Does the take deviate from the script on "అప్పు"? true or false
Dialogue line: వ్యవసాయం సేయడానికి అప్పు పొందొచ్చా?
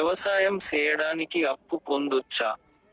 false